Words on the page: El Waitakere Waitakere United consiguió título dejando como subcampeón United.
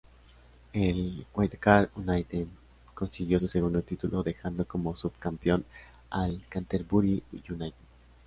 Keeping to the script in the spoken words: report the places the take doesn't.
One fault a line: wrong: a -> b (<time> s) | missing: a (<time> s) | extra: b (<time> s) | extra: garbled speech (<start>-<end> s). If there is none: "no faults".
missing: Waitakere (1.9 s)
extra: su segundo (3.4 s)
extra: al Canterbury (6.1 s)